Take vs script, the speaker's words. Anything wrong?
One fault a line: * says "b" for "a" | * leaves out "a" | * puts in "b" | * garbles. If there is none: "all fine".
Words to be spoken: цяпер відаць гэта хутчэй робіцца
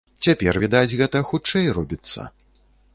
all fine